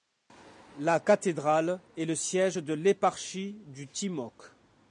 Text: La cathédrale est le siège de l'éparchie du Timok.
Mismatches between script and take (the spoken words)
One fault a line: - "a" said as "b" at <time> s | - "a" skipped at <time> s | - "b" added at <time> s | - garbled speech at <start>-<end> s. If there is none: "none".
none